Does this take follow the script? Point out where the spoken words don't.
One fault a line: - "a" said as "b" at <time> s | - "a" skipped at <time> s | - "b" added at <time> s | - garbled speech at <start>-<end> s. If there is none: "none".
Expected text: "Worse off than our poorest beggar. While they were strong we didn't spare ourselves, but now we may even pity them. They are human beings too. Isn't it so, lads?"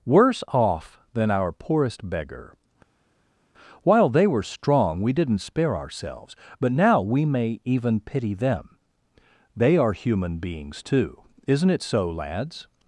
none